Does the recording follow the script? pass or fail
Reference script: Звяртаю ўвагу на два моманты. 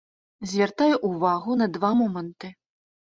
pass